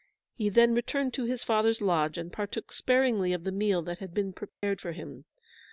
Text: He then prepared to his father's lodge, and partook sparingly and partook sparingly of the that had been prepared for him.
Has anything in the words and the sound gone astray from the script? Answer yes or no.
yes